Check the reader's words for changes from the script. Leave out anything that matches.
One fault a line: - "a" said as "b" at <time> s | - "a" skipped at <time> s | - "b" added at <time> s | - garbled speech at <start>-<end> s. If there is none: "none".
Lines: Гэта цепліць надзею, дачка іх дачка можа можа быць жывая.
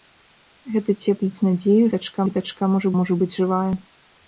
none